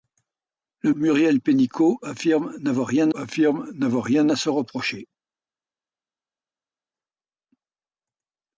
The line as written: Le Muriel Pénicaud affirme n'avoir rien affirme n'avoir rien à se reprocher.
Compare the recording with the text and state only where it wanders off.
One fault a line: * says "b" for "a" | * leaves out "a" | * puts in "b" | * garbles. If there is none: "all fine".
all fine